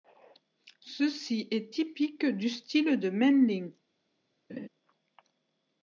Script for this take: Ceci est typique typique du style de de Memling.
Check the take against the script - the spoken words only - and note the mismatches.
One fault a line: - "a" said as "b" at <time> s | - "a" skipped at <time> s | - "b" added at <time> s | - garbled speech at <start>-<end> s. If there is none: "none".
- "typique" skipped at 2.3 s
- "de" skipped at 3.1 s